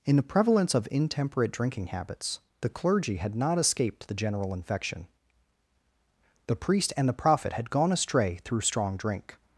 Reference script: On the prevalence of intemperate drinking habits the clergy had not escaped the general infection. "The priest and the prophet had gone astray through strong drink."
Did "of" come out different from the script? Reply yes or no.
no